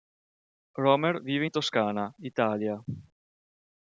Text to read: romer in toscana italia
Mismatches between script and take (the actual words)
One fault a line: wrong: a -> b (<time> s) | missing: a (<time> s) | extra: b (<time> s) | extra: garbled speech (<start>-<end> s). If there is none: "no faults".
extra: vive (1.2 s)